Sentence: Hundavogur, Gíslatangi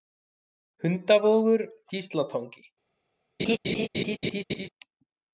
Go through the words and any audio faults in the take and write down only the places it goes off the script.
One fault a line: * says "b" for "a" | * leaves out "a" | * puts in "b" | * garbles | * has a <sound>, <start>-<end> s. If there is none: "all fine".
* has a laugh, 3.4-4.7 s